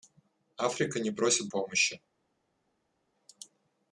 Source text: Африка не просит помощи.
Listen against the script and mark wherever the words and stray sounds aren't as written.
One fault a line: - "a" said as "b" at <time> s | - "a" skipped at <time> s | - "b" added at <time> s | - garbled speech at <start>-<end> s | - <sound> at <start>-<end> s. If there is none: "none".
none